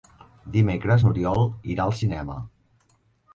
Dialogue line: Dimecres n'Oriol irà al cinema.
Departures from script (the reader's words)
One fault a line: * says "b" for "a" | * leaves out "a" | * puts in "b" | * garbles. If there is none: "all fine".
all fine